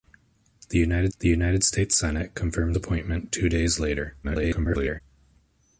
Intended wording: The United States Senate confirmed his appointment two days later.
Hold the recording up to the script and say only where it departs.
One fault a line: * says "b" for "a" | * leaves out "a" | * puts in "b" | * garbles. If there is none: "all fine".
* puts in "the United"
* leaves out "his"
* garbles